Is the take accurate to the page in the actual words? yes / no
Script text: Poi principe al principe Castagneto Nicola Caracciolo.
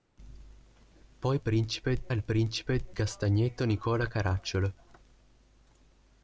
yes